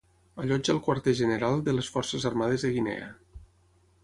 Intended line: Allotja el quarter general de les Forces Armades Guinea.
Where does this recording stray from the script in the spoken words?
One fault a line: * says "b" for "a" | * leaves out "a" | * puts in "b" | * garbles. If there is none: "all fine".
* puts in "de"